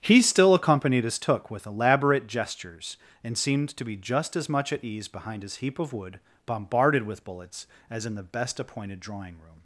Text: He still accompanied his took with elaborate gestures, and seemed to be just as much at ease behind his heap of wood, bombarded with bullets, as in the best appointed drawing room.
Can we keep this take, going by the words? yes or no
yes